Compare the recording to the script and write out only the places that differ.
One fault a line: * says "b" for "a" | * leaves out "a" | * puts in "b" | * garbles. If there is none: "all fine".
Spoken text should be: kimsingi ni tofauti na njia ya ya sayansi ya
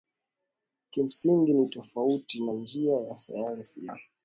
* leaves out "ya"